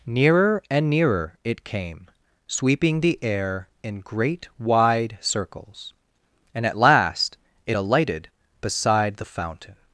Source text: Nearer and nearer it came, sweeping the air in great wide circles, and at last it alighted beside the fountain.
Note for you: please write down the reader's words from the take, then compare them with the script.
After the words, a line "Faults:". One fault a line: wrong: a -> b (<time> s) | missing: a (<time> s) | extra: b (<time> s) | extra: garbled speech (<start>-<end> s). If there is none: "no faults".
Nearer and nearer it came, sweeping the air in great wide circles, and at last it alighted beside the fountain.
Faults:
no faults